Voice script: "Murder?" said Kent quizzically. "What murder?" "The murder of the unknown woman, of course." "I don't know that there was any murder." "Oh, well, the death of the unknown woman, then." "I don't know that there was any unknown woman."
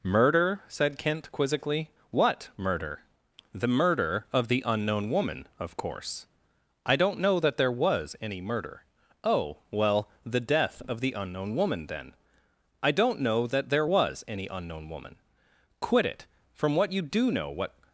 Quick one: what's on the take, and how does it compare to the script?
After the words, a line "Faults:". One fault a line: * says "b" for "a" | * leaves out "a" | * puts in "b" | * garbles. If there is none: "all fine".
"Murder?" said Kent quizzically. "What murder?" "The murder of the unknown woman, of course." "I don't know that there was any murder." "Oh, well, the death of the unknown woman, then." "I don't know that there was any unknown woman." "Quit it! From what you do know, what
Faults:
* puts in "Quit it From what you do know what"